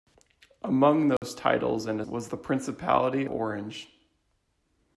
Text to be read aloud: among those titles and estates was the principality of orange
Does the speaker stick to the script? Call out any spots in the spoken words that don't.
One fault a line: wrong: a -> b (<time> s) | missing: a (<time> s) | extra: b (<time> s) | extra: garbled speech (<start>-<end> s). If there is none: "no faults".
missing: estates (2.0 s)
missing: of (3.2 s)